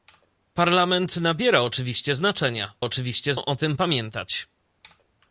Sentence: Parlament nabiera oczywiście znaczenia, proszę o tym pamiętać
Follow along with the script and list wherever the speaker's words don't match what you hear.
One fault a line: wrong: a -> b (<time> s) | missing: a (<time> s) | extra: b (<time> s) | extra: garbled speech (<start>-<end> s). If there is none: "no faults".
wrong: proszę -> oczywiście (2.8 s)